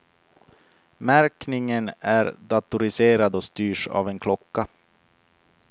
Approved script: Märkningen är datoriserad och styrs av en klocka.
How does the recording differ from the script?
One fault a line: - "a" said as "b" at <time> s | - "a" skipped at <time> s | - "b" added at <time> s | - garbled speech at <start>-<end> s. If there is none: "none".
none